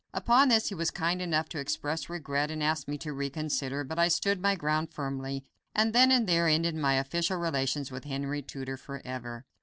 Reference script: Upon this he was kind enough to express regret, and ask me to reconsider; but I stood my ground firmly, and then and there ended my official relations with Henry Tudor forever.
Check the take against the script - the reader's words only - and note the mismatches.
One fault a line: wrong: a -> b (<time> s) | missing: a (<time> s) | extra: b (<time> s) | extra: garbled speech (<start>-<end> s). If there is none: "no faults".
no faults